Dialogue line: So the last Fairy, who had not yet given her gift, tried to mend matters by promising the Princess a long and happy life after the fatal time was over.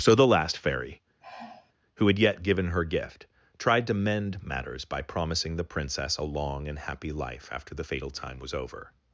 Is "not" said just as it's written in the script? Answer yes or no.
no